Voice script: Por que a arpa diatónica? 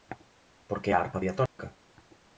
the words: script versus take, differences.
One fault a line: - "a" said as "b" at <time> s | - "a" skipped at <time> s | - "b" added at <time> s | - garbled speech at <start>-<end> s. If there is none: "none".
none